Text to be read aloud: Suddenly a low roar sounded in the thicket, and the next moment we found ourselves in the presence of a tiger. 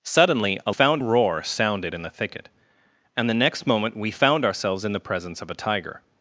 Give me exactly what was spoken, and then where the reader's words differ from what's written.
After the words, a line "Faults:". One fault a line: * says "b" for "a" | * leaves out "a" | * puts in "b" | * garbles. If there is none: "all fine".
Suddenly a found roar sounded in the thicket, and the next moment we found ourselves in the presence of a tiger.
Faults:
* says "found" for "low"